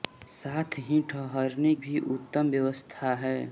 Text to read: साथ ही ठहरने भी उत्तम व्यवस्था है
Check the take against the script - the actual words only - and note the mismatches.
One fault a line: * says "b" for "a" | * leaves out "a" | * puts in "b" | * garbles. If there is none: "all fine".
all fine